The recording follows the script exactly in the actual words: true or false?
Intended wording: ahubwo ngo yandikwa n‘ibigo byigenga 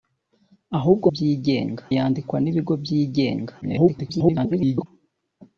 false